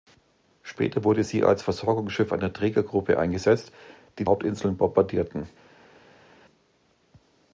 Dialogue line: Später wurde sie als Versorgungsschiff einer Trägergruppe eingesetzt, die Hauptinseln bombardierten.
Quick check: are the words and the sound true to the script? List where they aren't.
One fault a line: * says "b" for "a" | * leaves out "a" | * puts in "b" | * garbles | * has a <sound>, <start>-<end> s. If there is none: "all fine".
all fine